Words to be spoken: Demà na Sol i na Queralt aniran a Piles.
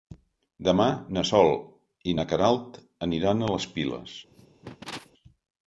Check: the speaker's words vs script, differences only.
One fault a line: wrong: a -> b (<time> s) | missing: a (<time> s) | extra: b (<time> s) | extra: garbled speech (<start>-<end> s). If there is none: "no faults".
extra: les (3.6 s)